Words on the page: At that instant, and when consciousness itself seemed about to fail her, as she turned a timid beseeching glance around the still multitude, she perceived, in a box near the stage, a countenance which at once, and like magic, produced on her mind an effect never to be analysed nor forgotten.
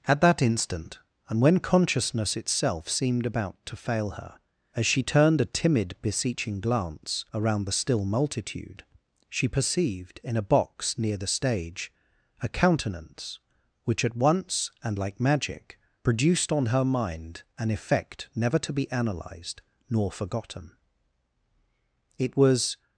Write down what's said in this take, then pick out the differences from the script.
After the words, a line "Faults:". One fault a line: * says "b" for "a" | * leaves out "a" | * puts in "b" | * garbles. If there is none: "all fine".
At that instant, and when consciousness itself seemed about to fail her, as she turned a timid beseeching glance around the still multitude, she perceived, in a box near the stage, a countenance which at once, and like magic, produced on her mind an effect never to be analysed nor forgotten. It was
Faults:
* puts in "It was"